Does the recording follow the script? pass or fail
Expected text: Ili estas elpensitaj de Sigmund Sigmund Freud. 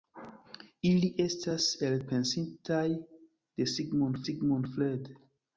pass